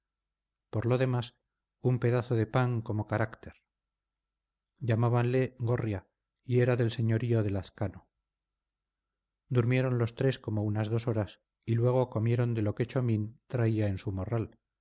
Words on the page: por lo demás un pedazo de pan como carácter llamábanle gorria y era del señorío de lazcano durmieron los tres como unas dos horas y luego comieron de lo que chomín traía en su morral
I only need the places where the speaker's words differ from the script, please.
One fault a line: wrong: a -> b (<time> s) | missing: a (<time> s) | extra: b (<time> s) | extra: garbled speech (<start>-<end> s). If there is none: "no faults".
no faults